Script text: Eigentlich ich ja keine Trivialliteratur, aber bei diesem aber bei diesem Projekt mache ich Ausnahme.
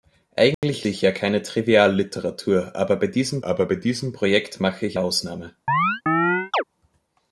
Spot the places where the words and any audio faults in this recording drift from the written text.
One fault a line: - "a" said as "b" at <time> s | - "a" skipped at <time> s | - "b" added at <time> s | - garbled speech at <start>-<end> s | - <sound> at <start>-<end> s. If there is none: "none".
- dropout at 0.5-0.6 s
- chirp at 5.7-6.6 s